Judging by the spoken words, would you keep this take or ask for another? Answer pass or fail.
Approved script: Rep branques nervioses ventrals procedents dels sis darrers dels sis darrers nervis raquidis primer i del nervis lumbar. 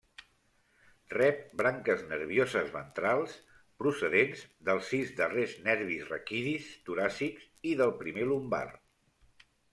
fail